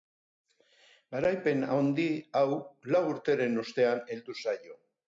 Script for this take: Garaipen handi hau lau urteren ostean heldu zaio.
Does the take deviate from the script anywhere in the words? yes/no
no